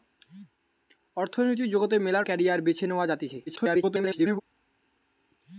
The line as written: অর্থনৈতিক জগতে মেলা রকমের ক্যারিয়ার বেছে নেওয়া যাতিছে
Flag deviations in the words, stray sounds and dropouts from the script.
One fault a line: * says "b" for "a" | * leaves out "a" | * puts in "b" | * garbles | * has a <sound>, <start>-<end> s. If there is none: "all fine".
* leaves out "রকমের"
* garbles